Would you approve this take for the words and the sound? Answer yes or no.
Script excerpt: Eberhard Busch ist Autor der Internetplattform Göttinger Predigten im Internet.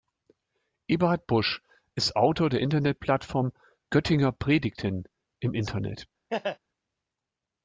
no